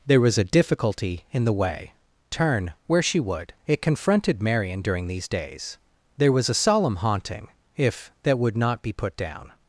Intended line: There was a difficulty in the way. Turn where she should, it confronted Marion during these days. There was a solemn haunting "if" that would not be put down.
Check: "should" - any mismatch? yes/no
yes